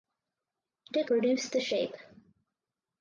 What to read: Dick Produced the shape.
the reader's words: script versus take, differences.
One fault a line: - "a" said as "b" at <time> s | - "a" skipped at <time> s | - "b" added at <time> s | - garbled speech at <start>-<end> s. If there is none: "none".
none